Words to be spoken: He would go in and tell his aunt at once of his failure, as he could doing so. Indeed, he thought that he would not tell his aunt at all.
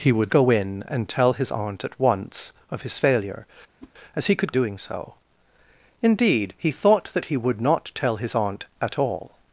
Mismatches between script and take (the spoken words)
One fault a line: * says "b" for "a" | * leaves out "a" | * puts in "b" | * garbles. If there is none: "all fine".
all fine